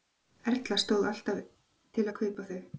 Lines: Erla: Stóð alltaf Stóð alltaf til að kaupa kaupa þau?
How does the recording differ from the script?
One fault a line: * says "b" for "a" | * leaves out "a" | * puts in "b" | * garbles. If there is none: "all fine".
* leaves out "Stóð alltaf"
* leaves out "kaupa"